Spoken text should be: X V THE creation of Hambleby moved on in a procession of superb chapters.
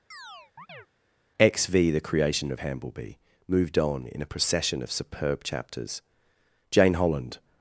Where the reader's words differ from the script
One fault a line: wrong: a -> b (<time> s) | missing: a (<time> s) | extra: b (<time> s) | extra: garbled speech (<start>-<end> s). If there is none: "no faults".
extra: Jane Holland (6.7 s)